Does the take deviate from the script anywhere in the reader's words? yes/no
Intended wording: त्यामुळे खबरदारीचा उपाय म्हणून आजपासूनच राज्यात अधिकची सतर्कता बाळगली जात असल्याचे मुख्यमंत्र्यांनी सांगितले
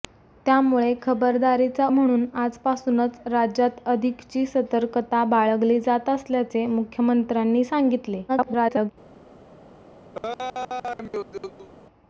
yes